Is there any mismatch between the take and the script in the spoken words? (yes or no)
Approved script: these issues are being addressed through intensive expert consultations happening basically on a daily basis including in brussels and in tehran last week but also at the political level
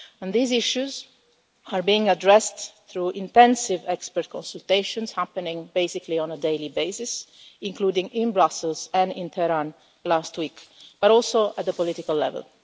no